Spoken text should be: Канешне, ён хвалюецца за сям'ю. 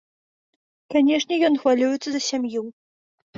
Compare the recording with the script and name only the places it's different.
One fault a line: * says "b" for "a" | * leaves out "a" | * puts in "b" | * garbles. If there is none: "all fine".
all fine